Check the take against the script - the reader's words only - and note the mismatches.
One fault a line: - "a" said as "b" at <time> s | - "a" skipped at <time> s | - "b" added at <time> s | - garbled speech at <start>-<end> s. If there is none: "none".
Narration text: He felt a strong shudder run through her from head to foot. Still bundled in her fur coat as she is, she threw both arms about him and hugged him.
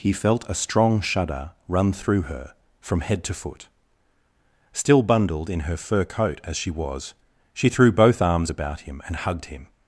- "is" said as "was" at 6.7 s